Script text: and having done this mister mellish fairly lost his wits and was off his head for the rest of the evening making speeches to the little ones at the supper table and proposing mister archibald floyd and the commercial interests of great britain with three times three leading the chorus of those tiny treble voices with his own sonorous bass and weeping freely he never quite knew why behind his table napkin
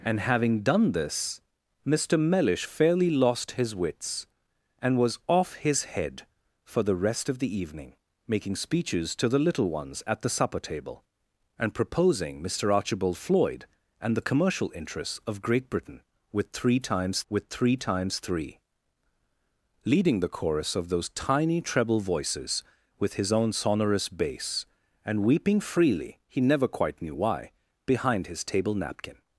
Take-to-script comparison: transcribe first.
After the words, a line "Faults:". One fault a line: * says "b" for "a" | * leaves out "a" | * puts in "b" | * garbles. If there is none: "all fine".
and having done this mister mellish fairly lost his wits and was off his head for the rest of the evening making speeches to the little ones at the supper table and proposing mister archibald floyd and the commercial interests of great britain with three times with three times three leading the chorus of those tiny treble voices with his own sonorous bass and weeping freely he never quite knew why behind his table napkin
Faults:
* puts in "with three times"